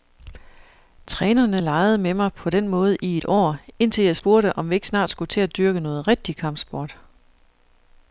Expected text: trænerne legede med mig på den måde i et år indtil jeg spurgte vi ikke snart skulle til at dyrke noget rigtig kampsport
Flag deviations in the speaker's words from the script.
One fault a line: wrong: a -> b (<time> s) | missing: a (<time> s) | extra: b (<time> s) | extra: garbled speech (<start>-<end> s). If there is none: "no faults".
extra: om (4.6 s)